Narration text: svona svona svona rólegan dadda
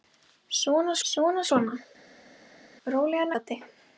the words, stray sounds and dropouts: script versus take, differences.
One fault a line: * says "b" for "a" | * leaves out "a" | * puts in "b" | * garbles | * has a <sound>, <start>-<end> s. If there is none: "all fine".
all fine